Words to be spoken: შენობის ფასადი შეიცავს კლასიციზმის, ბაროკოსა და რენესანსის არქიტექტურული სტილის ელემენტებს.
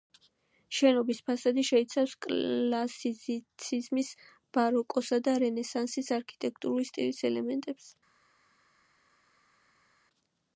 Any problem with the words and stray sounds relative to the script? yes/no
no